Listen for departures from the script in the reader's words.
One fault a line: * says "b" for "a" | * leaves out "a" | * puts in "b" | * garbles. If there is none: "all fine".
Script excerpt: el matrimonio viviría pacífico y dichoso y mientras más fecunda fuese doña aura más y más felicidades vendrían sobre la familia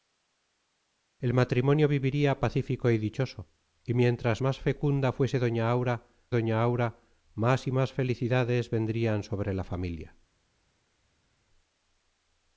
* puts in "doña aura"